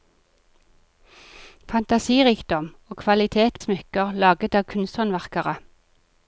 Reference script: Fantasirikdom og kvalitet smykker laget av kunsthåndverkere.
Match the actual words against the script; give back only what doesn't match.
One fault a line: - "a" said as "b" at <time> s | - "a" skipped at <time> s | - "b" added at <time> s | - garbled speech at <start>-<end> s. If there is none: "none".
none